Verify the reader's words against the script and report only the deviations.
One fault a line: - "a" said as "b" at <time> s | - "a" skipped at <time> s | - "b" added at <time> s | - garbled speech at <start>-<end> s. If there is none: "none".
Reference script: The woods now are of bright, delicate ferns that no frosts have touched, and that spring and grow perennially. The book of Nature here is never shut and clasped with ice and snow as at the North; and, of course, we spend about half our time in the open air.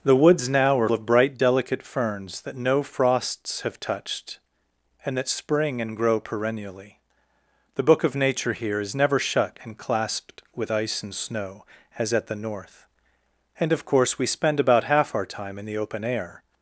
none